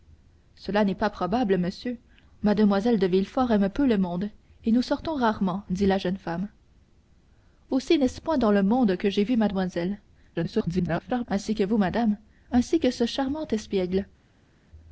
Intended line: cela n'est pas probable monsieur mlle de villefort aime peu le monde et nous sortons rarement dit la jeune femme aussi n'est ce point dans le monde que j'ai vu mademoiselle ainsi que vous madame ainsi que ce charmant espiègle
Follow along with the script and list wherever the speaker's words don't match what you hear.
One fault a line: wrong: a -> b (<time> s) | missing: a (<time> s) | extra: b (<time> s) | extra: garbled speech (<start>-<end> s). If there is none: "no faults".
extra: garbled speech (10.3-11.3 s)